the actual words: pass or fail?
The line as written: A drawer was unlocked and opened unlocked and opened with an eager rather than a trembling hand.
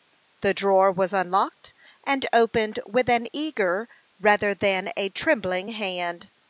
fail